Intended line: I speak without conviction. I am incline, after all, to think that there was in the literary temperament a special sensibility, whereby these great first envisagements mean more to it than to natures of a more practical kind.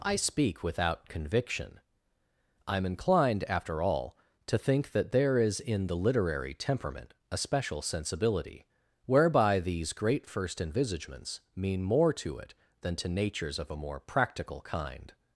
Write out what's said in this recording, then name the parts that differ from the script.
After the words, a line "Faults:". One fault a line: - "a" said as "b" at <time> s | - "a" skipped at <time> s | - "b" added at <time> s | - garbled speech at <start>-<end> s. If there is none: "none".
I speak without conviction. I am inclined, after all, to think that there is in the literary temperament a special sensibility, whereby these great first envisagements mean more to it than to natures of a more practical kind.
Faults:
- "incline" said as "inclined" at 2.9 s
- "was" said as "is" at 5.4 s